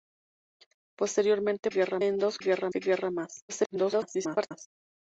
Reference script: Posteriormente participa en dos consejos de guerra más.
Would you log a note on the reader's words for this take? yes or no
yes